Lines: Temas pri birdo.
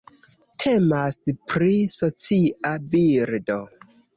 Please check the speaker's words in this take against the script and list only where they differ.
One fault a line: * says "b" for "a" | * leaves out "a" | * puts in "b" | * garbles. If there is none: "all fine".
* puts in "socia"